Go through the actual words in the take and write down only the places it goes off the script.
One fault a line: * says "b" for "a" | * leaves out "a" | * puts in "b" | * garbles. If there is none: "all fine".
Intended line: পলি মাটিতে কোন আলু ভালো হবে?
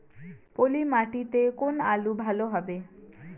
all fine